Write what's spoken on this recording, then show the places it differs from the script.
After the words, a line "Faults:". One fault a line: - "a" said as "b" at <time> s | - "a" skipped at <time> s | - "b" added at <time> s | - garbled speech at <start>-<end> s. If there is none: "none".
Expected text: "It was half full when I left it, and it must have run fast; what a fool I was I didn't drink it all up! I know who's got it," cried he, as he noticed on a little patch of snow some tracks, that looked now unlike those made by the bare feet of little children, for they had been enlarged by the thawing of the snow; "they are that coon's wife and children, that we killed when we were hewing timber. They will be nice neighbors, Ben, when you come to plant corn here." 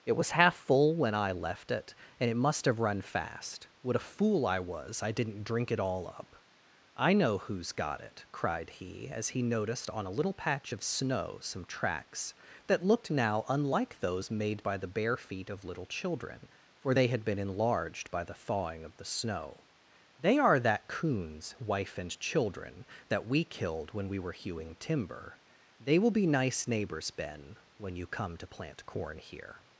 "It was half full when I left it, and it must have run fast; what a fool I was I didn't drink it all up! I know who's got it," cried he, as he noticed on a little patch of snow some tracks, that looked now unlike those made by the bare feet of little children, for they had been enlarged by the thawing of the snow; "they are that coon's wife and children, that we killed when we were hewing timber. They will be nice neighbors, Ben, when you come to plant corn here."
Faults:
none